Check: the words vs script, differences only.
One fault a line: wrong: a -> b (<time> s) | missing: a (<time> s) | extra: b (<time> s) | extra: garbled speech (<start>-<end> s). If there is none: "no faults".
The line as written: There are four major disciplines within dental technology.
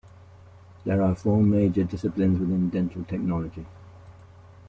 no faults